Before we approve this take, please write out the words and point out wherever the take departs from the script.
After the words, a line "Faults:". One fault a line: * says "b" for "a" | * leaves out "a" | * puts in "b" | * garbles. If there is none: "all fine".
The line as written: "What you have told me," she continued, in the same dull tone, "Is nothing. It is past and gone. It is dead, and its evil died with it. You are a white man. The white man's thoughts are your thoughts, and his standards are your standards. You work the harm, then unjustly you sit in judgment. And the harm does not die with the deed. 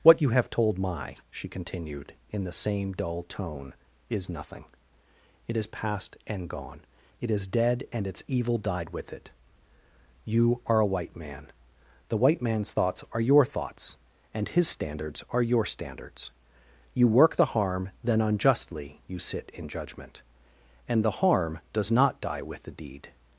"What you have told my," she continued, in the same dull tone, "Is nothing. It is past and gone. It is dead, and its evil died with it. You are a white man. The white man's thoughts are your thoughts, and his standards are your standards. You work the harm, then unjustly you sit in judgment. And the harm does not die with the deed.
Faults:
* says "my" for "me"